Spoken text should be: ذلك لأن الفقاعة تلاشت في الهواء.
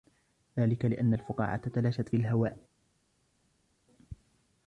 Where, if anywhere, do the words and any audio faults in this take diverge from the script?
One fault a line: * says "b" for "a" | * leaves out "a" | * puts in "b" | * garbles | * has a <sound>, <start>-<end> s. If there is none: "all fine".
all fine